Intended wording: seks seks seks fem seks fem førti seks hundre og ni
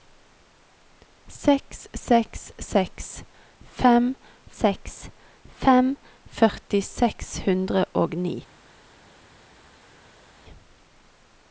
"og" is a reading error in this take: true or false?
false